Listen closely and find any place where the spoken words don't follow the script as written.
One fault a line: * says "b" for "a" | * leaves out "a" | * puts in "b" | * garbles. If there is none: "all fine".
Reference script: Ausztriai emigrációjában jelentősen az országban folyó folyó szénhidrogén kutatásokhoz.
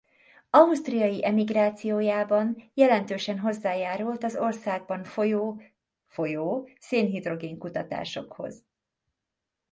* puts in "hozzájárult"